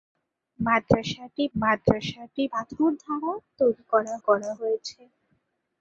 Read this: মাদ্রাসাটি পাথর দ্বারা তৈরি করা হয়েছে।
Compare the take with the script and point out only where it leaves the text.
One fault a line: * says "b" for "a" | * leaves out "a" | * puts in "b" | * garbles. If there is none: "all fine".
* puts in "মাদ্রাসাটি"
* puts in "করা"